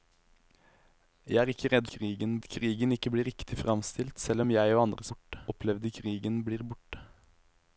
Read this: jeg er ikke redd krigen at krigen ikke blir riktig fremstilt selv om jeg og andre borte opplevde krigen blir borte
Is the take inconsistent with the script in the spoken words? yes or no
no